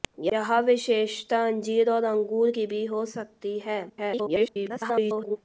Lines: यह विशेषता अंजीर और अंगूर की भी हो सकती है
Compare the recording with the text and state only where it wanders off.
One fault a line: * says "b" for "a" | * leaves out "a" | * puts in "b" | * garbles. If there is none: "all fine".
* garbles